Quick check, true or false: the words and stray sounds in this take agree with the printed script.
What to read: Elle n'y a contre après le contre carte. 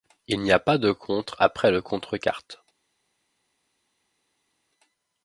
false